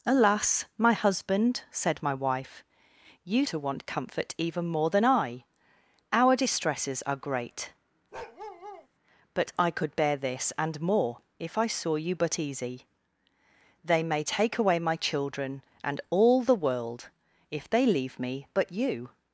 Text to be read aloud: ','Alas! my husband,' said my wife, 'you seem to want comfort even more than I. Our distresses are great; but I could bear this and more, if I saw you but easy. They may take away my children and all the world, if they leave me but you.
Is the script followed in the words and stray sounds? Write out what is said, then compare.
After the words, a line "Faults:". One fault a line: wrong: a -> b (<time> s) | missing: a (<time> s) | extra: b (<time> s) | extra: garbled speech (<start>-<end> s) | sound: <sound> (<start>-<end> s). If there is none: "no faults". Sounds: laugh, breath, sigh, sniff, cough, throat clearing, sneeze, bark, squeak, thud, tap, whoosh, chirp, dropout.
','Alas! my husband,' said my wife, 'you to want comfort even more than I. Our distresses are great; but I could bear this and more, if I saw you but easy. They may take away my children and all the world, if they leave me but you.
Faults:
missing: seem (3.5 s)
sound: bark (8.1-8.9 s)